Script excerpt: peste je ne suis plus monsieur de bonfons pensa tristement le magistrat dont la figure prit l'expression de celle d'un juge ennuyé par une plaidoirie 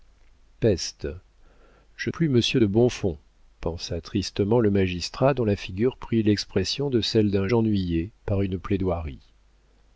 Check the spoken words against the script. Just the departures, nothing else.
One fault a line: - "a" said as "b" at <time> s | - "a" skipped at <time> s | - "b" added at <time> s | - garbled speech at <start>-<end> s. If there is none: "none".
- "ne suis" skipped at 2.1 s
- "juge" skipped at 7.5 s